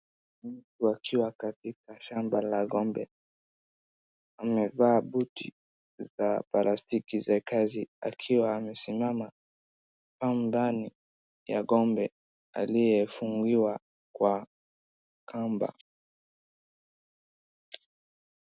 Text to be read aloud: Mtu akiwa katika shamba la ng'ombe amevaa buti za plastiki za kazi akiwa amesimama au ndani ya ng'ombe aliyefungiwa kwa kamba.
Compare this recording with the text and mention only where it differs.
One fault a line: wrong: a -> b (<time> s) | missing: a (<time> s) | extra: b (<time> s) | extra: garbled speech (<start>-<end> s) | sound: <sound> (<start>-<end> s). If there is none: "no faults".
no faults